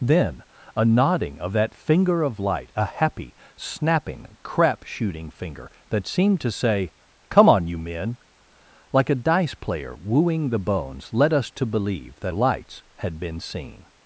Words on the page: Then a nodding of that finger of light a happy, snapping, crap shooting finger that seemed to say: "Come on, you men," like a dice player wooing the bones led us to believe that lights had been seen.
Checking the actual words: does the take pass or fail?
pass